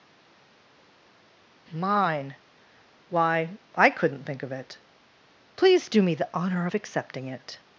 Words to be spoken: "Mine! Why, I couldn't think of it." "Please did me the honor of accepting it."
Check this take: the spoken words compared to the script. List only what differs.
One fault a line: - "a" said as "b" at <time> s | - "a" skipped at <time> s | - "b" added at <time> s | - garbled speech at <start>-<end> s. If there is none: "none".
- "did" said as "do" at 5.9 s